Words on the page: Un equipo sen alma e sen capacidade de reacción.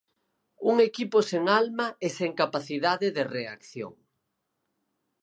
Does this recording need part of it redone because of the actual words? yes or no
no